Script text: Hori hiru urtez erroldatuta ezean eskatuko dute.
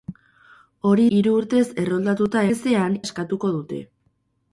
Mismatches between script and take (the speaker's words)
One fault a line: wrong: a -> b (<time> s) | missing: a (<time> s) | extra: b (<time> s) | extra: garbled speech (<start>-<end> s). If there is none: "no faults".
no faults